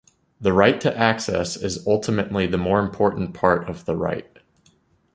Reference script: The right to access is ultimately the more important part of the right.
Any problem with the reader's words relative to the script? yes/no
no